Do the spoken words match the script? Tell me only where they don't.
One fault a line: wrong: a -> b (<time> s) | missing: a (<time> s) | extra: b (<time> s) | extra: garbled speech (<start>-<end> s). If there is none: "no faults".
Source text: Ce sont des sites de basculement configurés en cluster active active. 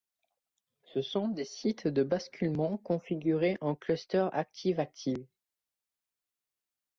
no faults